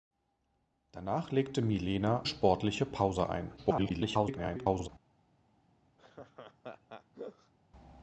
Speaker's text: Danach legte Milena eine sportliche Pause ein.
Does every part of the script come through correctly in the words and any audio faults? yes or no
no